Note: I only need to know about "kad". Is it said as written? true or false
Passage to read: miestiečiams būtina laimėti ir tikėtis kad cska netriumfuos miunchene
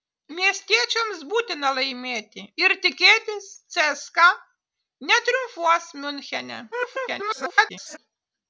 false